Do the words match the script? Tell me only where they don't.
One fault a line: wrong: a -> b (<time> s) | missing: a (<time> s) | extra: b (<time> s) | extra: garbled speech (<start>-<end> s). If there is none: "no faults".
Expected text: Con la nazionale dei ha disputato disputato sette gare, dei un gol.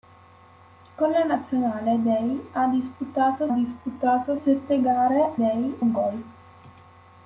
no faults